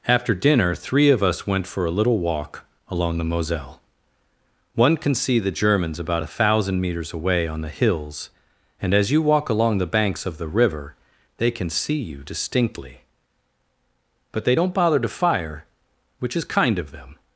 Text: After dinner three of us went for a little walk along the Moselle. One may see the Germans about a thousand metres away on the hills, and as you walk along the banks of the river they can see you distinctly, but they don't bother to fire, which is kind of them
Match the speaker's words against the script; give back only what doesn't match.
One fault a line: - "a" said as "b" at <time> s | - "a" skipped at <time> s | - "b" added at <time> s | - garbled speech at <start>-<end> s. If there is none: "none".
- "may" said as "can" at 5.0 s